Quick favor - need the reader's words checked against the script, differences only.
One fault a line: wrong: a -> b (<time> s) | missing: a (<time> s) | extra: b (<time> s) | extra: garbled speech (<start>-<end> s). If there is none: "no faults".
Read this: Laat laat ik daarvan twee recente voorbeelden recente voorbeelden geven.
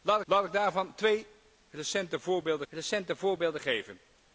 no faults